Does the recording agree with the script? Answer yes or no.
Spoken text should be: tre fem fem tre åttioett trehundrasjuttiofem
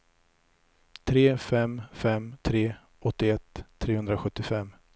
yes